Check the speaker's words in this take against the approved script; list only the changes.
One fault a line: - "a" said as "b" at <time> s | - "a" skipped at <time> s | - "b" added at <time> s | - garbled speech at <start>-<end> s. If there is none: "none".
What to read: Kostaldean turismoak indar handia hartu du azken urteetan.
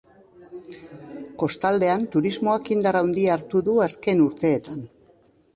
none